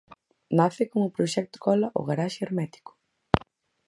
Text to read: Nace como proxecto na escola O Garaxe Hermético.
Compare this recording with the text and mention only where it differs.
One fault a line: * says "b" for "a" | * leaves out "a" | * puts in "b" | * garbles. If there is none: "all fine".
* leaves out "na"